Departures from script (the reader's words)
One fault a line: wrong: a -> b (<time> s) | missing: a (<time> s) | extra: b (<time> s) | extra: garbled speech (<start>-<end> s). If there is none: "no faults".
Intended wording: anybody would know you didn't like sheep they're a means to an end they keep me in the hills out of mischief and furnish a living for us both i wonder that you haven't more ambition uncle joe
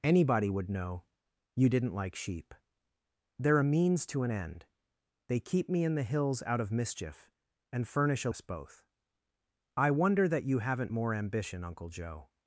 missing: living for (8.3 s)